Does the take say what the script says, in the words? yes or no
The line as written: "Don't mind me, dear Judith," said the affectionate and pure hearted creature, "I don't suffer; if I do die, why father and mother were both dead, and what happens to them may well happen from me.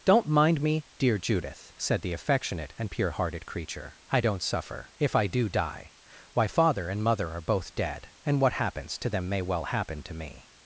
no